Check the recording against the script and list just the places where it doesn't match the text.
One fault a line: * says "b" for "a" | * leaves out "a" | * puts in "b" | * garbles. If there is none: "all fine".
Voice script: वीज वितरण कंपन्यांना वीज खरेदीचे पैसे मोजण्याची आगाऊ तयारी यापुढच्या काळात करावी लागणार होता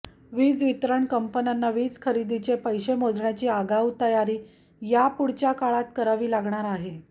* says "आहे" for "होता"